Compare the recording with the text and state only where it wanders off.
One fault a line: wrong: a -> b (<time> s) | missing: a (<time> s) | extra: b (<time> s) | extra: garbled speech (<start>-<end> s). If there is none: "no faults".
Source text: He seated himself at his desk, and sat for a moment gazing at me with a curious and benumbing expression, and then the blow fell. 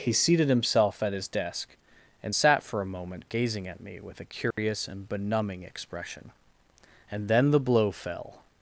no faults